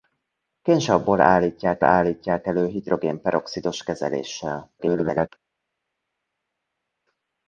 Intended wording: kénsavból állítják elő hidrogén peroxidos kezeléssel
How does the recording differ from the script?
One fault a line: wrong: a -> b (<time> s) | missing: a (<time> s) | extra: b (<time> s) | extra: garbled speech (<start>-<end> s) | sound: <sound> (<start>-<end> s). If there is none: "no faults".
extra: állítják (1.8 s)
extra: garbled speech (4.8-5.3 s)